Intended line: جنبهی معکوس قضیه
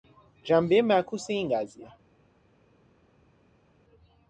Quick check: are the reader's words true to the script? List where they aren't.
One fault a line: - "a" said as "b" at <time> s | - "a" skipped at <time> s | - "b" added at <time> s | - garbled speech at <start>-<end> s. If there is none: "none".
- "این" added at 1.3 s